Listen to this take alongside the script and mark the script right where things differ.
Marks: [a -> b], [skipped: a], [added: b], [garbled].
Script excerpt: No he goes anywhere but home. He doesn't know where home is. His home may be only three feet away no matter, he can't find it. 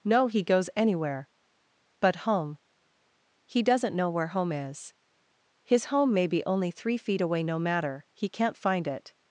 No he goes anywhere but home. He doesn't know where home is. His home may be only three feet away no matter, he can't find it.